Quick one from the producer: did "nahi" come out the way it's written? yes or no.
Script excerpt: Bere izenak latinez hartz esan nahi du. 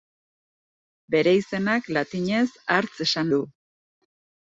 no